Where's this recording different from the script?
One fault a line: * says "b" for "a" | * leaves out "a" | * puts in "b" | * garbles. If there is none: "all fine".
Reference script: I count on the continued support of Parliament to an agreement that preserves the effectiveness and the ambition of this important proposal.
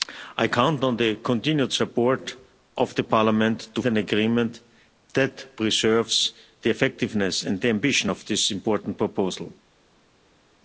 all fine